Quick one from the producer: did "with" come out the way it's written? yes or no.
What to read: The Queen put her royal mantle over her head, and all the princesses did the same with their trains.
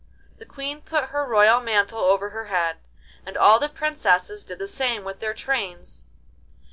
yes